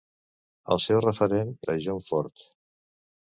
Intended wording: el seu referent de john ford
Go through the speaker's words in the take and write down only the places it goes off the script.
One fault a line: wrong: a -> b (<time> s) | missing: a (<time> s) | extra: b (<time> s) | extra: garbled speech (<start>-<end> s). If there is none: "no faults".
no faults